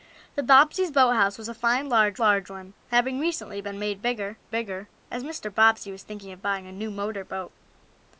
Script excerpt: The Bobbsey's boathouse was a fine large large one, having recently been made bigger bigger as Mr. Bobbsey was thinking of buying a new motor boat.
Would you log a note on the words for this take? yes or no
no